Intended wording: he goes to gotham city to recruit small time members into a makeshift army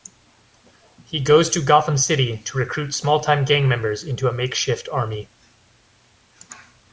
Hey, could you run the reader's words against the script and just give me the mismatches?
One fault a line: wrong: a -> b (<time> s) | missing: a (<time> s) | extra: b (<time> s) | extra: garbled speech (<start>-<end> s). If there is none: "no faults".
extra: gang (3.5 s)